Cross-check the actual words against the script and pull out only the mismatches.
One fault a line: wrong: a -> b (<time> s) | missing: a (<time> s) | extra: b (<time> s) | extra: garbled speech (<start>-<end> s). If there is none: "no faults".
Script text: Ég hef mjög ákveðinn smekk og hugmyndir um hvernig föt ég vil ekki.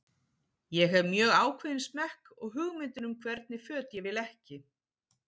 no faults